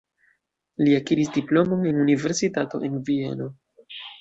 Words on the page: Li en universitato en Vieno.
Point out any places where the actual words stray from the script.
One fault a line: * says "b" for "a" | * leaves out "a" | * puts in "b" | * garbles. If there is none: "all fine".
* puts in "akiris diplomon"